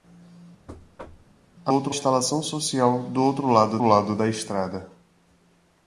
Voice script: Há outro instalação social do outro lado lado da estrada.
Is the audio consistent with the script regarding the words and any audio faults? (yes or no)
no